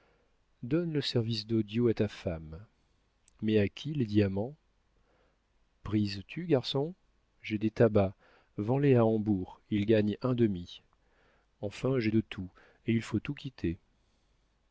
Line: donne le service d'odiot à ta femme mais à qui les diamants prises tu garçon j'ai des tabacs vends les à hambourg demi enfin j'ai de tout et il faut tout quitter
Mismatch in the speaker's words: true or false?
true